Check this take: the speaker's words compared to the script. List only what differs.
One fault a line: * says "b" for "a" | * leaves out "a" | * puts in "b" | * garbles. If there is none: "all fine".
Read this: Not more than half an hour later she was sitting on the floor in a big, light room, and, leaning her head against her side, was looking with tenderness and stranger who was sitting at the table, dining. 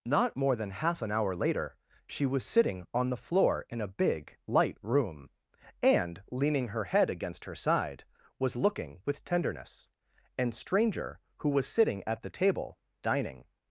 all fine